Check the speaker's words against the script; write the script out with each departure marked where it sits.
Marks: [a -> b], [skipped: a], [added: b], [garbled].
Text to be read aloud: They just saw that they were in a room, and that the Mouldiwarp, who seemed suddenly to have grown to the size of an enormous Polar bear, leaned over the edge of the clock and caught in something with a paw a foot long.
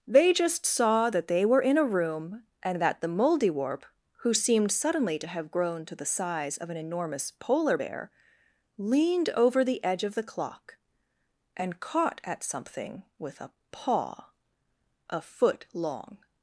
They just saw that they were in a room, and that the Mouldiwarp, who seemed suddenly to have grown to the size of an enormous Polar bear, leaned over the edge of the clock and caught [in -> at] something with a paw a foot long.